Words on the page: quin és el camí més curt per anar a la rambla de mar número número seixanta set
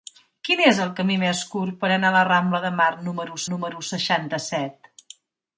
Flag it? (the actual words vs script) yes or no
no